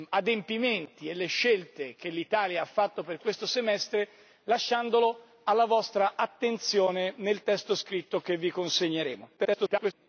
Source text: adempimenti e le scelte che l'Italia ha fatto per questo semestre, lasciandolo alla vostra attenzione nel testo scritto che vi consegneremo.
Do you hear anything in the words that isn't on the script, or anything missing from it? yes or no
yes